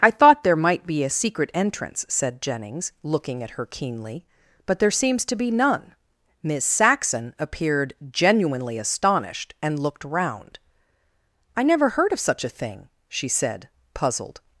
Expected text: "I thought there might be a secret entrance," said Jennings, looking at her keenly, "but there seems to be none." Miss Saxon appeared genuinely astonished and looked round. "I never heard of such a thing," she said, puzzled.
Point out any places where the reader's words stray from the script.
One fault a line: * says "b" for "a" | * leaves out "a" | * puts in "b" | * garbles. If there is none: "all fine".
all fine